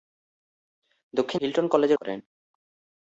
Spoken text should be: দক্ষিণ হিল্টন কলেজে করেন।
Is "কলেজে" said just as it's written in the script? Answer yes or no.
yes